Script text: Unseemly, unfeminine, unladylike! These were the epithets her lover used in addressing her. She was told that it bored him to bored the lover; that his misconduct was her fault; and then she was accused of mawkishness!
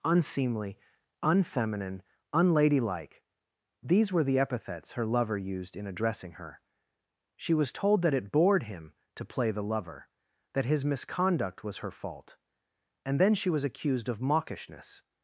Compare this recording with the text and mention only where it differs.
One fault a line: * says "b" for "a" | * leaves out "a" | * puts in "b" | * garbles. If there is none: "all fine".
* says "play" for "bored"